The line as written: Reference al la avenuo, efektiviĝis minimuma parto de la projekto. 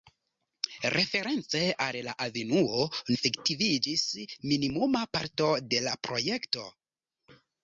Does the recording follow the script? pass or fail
pass